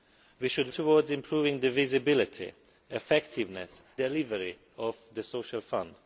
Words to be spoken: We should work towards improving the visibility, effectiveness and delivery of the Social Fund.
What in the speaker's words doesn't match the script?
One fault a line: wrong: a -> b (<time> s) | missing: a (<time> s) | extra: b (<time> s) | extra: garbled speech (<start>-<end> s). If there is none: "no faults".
missing: work (0.7 s)
missing: and (3.8 s)